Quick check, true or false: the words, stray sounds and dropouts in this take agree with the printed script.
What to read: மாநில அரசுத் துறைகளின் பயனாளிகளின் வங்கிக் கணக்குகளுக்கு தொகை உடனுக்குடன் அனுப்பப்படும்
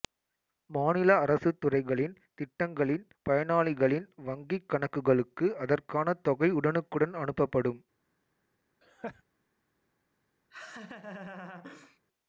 false